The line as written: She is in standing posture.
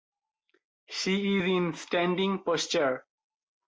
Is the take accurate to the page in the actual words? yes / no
yes